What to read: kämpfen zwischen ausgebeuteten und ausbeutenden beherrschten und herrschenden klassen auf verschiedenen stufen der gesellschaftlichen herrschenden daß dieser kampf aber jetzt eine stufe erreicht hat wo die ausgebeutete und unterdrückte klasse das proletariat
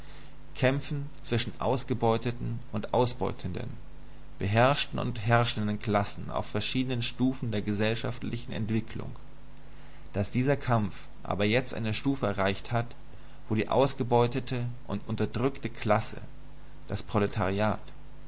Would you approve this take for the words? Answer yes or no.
no